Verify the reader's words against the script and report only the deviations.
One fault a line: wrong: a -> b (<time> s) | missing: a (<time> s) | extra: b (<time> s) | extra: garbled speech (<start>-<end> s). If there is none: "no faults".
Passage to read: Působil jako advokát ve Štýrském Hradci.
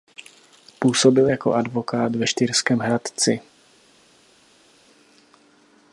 no faults